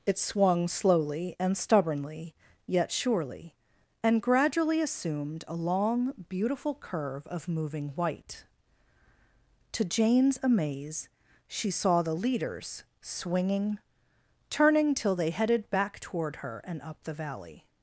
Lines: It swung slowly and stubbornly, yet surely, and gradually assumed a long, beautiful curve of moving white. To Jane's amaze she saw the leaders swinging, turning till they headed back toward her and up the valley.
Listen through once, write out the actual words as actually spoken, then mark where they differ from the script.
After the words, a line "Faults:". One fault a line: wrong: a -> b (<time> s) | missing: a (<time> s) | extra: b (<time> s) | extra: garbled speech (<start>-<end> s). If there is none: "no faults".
It swung slowly and stubbornly, yet surely, and gradually assumed a long, beautiful curve of moving white. To Jane's amaze she saw the leaders swinging, turning till they headed back toward her and up the valley.
Faults:
no faults